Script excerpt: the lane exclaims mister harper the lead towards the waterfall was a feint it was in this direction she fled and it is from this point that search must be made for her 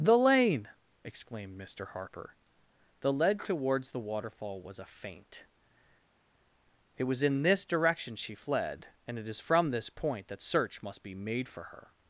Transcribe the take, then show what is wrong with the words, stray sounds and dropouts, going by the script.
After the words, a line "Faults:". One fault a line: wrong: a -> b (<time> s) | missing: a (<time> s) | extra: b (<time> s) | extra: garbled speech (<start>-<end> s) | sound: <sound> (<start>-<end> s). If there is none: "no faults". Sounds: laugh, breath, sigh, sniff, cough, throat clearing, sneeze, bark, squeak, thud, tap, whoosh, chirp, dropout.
the lane exclaimed mister harper the lead towards the waterfall was a feint it was in this direction she fled and it is from this point that search must be made for her
Faults:
wrong: exclaims -> exclaimed (1.0 s)